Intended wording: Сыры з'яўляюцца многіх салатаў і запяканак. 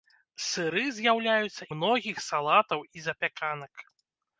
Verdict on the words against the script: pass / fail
pass